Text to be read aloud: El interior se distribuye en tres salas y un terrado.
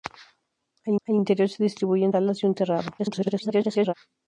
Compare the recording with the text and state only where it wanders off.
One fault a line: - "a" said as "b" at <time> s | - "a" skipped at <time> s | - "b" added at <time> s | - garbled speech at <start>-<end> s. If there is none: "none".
- "el" added at 1.0 s
- "tres" skipped at 2.1 s
- garbled speech at 3.0-3.9 s